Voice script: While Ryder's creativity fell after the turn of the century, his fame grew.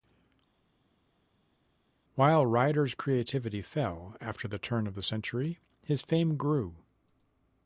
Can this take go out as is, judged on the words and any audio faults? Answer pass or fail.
pass